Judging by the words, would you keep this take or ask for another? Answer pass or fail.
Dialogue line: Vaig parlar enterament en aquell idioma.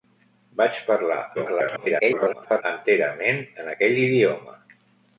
fail